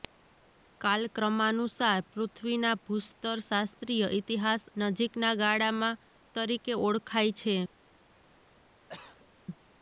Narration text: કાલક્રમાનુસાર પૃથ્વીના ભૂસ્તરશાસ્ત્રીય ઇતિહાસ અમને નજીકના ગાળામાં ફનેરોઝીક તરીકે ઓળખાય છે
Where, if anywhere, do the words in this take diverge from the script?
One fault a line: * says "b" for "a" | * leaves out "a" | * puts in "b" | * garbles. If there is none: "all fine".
* leaves out "અમને"
* leaves out "ફનેરોઝીક"